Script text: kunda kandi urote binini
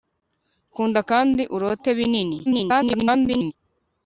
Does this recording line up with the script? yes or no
no